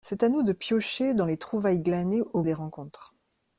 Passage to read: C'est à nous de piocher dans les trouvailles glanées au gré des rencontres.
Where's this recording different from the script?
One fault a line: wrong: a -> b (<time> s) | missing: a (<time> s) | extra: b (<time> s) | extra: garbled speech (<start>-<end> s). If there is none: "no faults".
missing: gré (2.4 s)